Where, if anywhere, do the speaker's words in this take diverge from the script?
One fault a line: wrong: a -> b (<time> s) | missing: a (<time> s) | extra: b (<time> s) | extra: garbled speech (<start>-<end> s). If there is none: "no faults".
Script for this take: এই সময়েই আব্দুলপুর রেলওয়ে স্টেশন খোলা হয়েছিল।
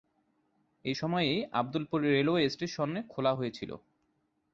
no faults